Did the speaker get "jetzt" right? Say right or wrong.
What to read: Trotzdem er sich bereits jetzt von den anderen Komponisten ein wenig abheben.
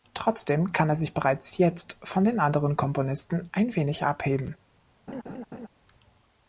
right